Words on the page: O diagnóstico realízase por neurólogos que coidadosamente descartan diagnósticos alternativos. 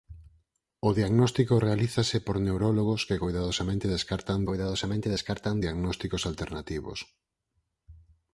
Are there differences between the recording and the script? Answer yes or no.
yes